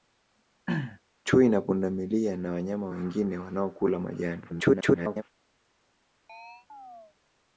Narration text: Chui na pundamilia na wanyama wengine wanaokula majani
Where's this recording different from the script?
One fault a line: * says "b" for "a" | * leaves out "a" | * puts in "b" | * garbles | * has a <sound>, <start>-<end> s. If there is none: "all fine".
* has a throat clearing, 0.7-1.0 s
* garbles
* has a chirp, 6.3-7.2 s